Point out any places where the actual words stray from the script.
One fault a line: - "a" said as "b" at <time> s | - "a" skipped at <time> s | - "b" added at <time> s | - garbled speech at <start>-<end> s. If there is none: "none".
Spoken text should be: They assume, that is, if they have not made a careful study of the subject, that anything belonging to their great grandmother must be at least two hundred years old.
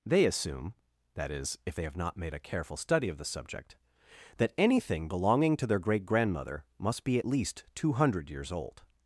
none